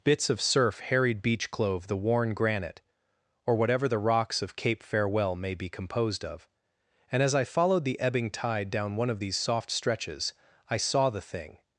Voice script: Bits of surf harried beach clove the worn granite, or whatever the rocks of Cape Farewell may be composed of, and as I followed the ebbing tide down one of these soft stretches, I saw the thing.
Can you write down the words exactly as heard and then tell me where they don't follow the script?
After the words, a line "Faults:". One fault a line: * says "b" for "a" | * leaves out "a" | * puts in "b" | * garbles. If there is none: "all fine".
Bits of surf harried beach clove the worn granite, or whatever the rocks of Cape Farewell may be composed of, and as I followed the ebbing tide down one of these soft stretches, I saw the thing.
Faults:
all fine